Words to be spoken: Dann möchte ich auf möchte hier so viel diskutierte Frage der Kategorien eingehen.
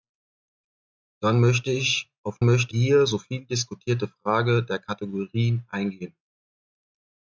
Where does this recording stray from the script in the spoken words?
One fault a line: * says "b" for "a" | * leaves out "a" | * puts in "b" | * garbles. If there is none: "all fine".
all fine